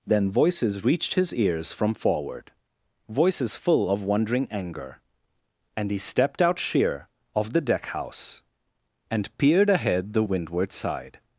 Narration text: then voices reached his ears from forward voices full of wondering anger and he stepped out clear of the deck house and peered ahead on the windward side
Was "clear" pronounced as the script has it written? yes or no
no